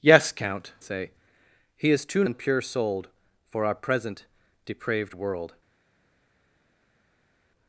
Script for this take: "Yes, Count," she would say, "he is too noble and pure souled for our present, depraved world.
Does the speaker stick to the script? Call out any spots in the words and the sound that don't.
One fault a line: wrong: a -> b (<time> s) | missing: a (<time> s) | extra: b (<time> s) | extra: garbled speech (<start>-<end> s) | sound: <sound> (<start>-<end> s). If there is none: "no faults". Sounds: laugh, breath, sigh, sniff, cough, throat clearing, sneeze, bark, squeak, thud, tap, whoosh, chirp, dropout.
missing: she would (0.7 s)
missing: noble (2.2 s)